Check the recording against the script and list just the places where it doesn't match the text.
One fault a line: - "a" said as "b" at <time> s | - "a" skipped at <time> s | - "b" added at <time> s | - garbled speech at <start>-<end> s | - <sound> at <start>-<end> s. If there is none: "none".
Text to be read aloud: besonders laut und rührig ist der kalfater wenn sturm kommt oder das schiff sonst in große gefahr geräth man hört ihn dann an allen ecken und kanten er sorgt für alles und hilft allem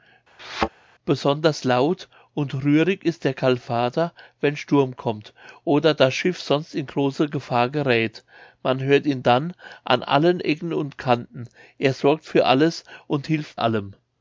- thud at 0.4-0.7 s